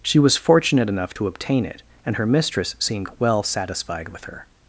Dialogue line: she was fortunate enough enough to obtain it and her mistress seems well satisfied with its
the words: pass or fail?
fail